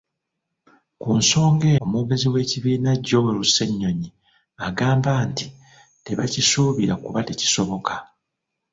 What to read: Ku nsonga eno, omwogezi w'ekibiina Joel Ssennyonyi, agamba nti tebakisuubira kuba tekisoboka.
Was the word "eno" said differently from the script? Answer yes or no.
yes